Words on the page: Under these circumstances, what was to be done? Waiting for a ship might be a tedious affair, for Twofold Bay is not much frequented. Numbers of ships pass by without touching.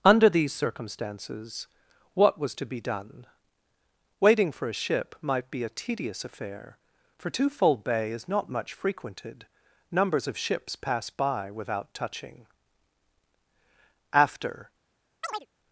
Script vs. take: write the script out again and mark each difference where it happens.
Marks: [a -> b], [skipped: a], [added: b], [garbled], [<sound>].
Under these circumstances, what was to be done? Waiting for a ship might be a tedious affair, for Twofold Bay is not much frequented. Numbers of ships pass by without touching. [added: After] [chirp]